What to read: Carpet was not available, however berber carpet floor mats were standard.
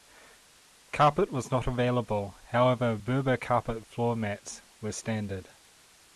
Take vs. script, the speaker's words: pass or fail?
pass